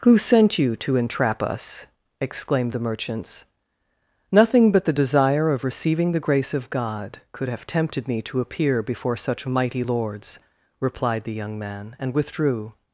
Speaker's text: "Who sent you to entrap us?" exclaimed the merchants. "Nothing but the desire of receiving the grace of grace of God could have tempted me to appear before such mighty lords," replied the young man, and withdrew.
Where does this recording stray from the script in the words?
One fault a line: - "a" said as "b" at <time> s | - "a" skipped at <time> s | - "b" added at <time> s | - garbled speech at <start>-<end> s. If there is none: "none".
- "grace of" skipped at 6.7 s